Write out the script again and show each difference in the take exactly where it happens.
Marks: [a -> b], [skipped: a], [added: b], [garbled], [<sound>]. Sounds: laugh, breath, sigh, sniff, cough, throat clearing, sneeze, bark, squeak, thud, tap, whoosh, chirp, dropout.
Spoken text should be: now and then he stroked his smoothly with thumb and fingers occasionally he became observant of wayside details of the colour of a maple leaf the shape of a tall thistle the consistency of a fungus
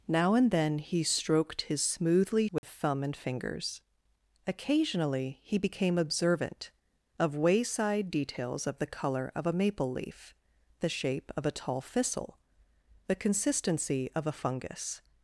now and then he stroked his smoothly with [dropout] thumb and fingers occasionally he became observant of wayside details of the colour of a maple leaf the shape of a tall thistle the consistency of a fungus